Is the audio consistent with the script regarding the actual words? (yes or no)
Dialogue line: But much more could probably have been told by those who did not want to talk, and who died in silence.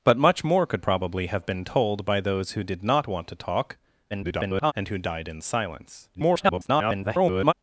no